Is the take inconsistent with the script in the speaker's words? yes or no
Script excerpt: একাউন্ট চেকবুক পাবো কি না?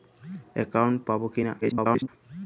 yes